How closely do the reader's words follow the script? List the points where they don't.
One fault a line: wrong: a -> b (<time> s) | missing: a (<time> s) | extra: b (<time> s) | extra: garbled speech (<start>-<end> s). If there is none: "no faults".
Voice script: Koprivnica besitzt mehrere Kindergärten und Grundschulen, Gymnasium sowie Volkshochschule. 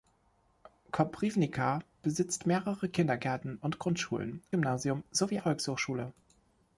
no faults